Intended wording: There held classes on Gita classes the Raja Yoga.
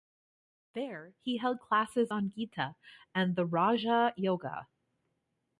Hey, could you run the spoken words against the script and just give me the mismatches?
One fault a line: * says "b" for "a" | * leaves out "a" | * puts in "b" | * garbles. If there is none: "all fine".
* puts in "he"
* says "and" for "classes"